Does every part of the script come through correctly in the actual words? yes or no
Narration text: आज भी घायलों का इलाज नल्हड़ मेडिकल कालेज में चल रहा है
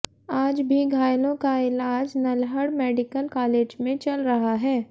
yes